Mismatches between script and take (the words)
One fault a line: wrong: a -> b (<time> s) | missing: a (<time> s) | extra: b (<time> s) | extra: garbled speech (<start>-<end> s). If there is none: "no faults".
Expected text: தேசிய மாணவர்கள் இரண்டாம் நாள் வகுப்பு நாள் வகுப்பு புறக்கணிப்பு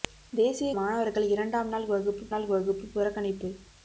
no faults